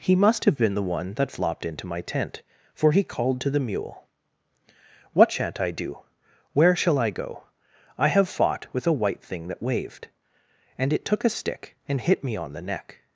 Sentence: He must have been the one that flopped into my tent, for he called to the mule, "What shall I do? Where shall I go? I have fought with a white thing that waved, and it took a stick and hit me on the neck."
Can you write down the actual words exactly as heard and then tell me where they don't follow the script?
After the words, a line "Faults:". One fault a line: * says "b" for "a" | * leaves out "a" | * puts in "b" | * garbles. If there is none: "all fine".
He must have been the one that flopped into my tent, for he called to the mule, "What shan't I do? Where shall I go? I have fought with a white thing that waved, and it took a stick and hit me on the neck."
Faults:
* says "shan't" for "shall"